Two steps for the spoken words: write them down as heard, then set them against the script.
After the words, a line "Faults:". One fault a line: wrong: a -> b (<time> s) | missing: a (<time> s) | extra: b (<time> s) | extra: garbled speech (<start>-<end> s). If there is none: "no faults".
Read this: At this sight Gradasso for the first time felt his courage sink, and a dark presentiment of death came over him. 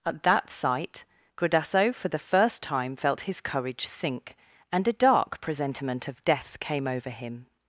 At that sight Gradasso for the first time felt his courage sink, and a dark presentiment of death came over him.
Faults:
wrong: this -> that (0.2 s)